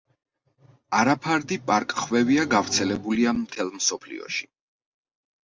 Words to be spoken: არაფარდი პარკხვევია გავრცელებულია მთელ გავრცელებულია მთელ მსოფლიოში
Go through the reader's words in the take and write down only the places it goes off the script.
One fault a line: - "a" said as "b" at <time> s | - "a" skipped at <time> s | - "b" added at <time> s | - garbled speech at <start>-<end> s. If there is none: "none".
- "გავრცელებულია მთელ" skipped at 3.7 s